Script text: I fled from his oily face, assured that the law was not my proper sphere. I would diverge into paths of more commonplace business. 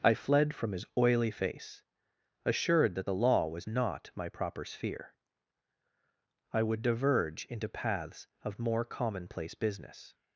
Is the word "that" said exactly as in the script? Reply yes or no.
yes